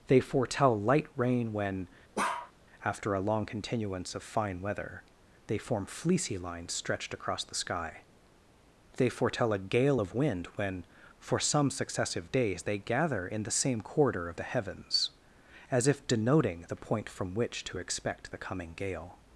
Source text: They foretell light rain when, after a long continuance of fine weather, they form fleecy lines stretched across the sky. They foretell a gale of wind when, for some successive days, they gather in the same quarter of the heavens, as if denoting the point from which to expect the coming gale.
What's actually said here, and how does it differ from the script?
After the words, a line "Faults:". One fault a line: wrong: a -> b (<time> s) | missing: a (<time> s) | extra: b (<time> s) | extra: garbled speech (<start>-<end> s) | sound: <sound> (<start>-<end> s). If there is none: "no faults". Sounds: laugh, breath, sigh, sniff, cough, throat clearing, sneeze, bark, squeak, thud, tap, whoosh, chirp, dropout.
They foretell light rain when, after a long continuance of fine weather, they form fleecy lines stretched across the sky. They foretell a gale of wind when, for some successive days, they gather in the same quarter of the heavens, as if denoting the point from which to expect the coming gale.
Faults:
sound: bark (2.2-2.5 s)